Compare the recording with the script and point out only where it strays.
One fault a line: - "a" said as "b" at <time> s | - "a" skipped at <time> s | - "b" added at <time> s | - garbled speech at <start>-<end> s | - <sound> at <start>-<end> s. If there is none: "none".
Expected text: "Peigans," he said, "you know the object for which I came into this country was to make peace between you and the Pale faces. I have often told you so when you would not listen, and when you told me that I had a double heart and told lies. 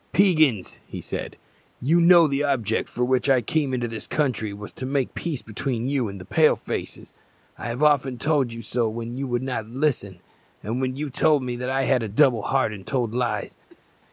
- cough at 13.7-13.9 s